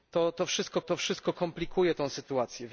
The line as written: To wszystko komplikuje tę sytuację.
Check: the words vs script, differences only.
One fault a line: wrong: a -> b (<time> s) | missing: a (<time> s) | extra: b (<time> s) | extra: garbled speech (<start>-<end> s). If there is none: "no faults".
extra: to wszystko (0.9 s)